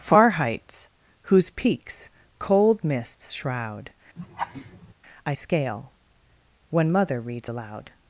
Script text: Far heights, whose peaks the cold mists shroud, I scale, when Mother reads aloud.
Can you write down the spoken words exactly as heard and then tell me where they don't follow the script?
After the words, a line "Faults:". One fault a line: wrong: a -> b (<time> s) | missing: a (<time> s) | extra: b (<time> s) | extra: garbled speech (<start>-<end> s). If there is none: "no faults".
Far heights, whose peaks cold mists shroud, I scale, when Mother reads aloud.
Faults:
missing: the (2.1 s)